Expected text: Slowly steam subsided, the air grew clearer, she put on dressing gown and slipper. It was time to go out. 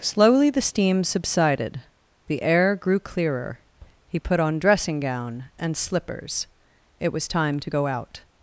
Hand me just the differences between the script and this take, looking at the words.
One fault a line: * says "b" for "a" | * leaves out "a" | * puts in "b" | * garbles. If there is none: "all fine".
* puts in "the"
* says "he" for "she"
* says "slippers" for "slipper"